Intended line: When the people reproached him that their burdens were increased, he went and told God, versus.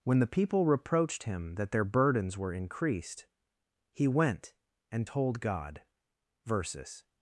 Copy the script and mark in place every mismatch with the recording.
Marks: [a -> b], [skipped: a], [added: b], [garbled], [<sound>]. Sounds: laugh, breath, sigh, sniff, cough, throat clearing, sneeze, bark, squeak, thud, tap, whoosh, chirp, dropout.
When the people reproached him that their burdens were increased, he went and told God, versus.